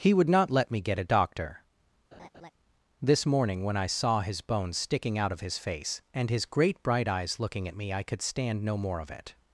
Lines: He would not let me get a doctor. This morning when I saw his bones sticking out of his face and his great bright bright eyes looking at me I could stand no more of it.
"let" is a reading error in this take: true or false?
false